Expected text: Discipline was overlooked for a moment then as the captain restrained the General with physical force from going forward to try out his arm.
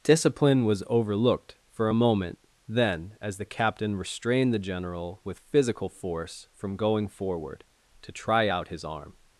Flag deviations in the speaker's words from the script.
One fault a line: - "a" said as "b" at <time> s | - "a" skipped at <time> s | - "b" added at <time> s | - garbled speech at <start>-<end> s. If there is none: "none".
none